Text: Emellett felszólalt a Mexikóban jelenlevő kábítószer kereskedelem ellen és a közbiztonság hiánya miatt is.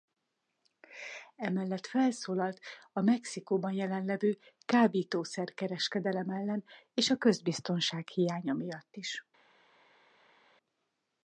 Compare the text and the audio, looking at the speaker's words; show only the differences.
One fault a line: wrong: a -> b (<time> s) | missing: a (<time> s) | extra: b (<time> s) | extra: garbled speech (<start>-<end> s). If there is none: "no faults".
no faults